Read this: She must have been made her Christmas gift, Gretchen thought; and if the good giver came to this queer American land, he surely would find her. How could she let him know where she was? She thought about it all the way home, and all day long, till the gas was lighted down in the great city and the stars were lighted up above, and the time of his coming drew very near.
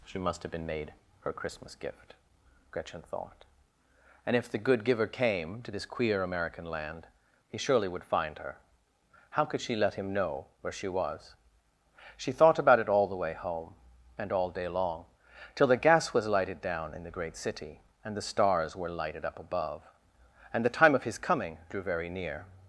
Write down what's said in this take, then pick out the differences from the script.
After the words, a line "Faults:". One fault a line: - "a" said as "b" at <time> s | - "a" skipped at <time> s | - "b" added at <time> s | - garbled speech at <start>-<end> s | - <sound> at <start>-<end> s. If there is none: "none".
She must have been made her Christmas gift, Gretchen thought; and if the good giver came to this queer American land, he surely would find her. How could she let him know where she was? She thought about it all the way home, and all day long, till the gas was lighted down in the great city and the stars were lighted up above, and the time of his coming drew very near.
Faults:
none